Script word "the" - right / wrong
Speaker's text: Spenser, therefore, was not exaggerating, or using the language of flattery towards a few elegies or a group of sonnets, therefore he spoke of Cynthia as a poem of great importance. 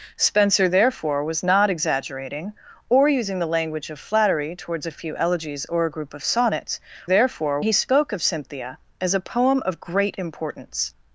right